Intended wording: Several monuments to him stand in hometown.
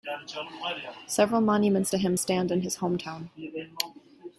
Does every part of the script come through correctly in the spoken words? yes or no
no